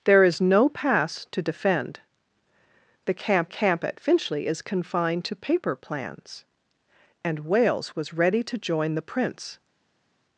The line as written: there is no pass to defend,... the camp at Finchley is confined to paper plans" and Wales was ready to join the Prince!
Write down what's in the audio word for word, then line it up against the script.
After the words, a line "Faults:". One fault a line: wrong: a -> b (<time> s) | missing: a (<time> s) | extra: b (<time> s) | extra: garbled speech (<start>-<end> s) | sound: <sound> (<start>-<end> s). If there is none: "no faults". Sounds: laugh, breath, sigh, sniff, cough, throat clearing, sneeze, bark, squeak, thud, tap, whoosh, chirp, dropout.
there is no pass to defend,... the camp camp at Finchley is confined to paper plans" and Wales was ready to join the Prince!
Faults:
extra: camp (3.5 s)